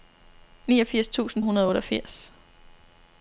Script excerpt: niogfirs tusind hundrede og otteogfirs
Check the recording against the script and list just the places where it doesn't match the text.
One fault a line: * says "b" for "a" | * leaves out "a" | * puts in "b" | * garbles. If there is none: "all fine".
all fine